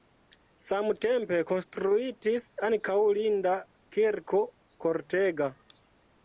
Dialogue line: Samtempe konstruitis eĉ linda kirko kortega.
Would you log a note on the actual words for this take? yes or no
yes